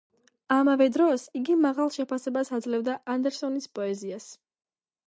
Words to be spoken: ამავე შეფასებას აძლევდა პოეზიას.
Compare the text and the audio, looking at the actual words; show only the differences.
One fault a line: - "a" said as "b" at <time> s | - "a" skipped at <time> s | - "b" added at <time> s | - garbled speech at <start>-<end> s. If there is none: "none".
- "დროს იგი მაღალ" added at 0.9 s
- "ანდერსონის" added at 3.2 s